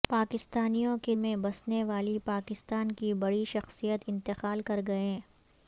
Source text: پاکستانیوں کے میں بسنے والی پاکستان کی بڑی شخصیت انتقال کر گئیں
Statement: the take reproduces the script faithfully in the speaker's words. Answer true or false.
true